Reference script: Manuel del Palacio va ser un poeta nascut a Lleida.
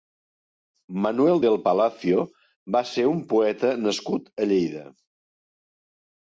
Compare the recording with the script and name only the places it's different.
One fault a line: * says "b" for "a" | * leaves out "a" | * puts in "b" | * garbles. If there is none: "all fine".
all fine